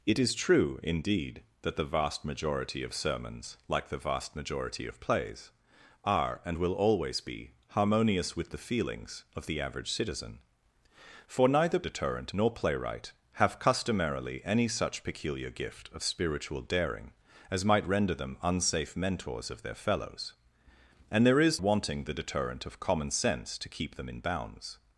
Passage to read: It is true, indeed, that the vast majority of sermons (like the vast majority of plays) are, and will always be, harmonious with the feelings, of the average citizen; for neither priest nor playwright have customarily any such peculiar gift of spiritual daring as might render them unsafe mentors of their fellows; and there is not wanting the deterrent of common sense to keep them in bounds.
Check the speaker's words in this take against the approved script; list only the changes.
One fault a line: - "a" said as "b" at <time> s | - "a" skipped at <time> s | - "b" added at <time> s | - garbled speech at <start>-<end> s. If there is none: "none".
- "priest" said as "deterrent" at 11.8 s
- "not" skipped at 21.6 s